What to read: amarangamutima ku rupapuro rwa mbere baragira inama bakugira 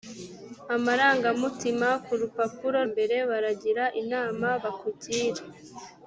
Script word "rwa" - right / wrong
wrong